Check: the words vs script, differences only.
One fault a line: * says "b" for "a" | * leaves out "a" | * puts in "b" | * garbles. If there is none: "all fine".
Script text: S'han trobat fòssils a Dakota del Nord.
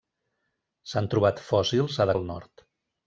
* leaves out "Dakota"